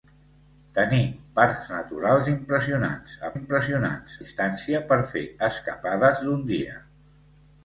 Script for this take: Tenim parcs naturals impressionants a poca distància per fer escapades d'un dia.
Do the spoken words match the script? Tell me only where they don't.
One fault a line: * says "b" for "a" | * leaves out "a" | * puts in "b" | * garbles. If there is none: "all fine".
* says "impressionants" for "poca"